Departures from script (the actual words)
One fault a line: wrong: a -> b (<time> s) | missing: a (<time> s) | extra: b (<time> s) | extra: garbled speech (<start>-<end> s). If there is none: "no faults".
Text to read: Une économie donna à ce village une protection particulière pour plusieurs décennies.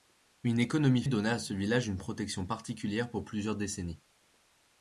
no faults